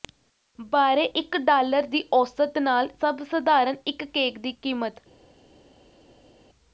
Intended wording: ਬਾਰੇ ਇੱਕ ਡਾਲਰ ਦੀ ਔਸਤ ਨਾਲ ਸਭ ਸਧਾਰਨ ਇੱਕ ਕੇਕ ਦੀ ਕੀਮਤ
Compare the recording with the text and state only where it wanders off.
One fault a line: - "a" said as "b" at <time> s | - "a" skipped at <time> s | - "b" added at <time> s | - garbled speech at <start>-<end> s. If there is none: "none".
none